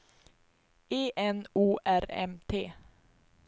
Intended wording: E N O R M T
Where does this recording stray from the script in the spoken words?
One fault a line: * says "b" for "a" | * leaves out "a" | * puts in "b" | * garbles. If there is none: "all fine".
all fine